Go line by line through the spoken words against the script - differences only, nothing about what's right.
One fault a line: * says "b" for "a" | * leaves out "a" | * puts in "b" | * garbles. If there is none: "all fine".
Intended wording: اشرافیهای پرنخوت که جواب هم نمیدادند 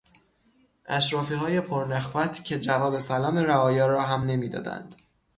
* puts in "سلام رعایا را"